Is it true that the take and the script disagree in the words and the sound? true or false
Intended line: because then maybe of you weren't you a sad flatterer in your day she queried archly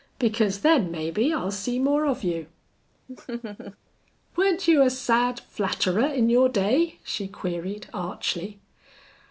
true